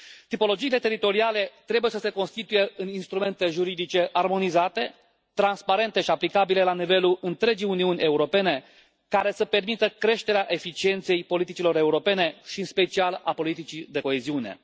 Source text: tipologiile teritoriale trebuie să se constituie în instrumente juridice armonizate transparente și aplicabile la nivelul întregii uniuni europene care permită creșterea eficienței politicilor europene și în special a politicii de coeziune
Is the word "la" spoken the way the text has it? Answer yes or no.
yes